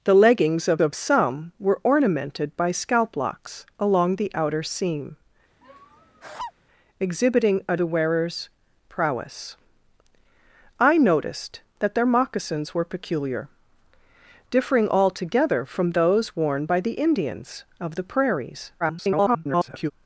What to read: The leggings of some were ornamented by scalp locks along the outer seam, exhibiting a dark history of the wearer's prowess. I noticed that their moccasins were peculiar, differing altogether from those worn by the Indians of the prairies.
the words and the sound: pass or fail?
fail